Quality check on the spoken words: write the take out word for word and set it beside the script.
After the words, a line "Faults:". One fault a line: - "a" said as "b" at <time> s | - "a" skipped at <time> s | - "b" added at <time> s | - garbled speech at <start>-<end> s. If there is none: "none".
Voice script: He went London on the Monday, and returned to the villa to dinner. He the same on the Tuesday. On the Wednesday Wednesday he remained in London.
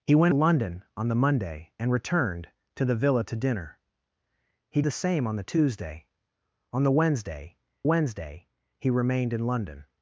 He went London on the Monday, and returned to the villa to dinner. He the same on the Tuesday. On the Wednesday Wednesday he remained in London.
Faults:
none